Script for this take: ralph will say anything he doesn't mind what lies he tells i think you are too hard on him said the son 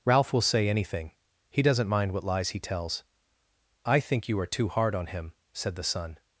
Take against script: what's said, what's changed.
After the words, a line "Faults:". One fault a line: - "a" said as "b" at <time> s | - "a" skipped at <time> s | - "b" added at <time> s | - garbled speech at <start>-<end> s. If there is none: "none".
ralph will say anything he doesn't mind what lies he tells i think you are too hard on him said the son
Faults:
none